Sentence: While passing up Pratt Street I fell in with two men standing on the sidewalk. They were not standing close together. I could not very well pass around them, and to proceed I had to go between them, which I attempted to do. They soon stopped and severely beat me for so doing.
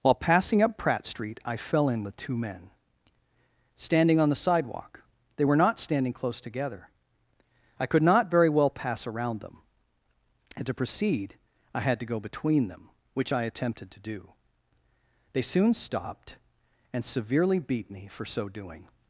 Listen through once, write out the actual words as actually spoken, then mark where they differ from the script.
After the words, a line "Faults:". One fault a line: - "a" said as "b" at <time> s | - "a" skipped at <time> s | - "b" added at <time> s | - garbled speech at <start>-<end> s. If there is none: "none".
While passing up Pratt Street I fell in with two men standing on the sidewalk. They were not standing close together. I could not very well pass around them, and to proceed I had to go between them, which I attempted to do. They soon stopped and severely beat me for so doing.
Faults:
none